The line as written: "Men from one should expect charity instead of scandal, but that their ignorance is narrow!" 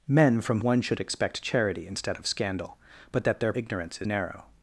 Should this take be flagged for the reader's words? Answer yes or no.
no